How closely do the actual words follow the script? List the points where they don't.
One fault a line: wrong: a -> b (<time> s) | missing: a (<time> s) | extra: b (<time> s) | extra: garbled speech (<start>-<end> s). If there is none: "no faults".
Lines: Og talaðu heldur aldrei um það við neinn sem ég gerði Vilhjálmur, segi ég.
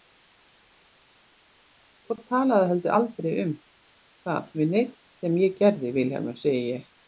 no faults